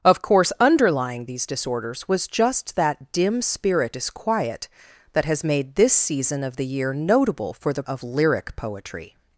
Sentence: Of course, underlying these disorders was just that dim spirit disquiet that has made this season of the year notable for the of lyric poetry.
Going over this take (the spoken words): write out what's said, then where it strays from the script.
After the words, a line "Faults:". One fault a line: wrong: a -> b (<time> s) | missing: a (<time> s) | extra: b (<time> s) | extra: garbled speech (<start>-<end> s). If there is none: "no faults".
Of course, underlying these disorders was just that dim spirit disquiet that has made this season of the year notable for the of lyric poetry.
Faults:
no faults